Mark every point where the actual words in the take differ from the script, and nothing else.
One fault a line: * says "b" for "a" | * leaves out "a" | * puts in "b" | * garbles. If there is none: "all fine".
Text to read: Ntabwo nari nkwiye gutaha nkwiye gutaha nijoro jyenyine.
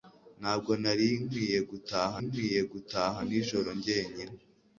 all fine